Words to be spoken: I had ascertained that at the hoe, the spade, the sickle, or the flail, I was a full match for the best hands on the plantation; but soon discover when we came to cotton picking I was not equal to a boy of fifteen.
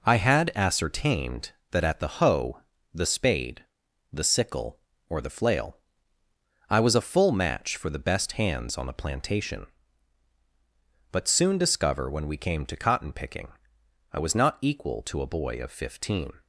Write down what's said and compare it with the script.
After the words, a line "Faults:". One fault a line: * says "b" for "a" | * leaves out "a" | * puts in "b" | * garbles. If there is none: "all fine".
I had ascertained that at the hoe, the spade, the sickle, or the flail, I was a full match for the best hands on the plantation; but soon discover when we came to cotton picking I was not equal to a boy of fifteen.
Faults:
all fine